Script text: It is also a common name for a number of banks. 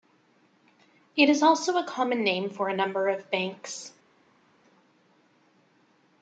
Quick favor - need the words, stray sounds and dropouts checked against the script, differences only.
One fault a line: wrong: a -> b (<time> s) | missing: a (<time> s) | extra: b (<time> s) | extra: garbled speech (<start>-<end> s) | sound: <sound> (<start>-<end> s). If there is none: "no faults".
no faults